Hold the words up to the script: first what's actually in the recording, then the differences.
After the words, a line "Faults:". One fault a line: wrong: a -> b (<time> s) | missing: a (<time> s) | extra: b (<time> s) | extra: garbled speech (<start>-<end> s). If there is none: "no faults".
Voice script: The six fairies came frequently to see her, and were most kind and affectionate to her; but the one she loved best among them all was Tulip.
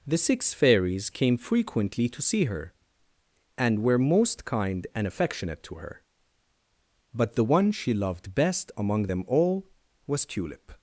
The six fairies came frequently to see her, and were most kind and affectionate to her; but the one she loved best among them all was Tulip.
Faults:
no faults